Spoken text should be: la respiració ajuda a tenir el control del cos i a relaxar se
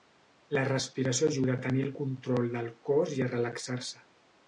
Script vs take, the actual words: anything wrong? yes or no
no